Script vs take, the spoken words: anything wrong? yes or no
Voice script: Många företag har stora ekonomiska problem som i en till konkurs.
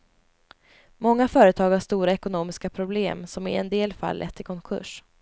yes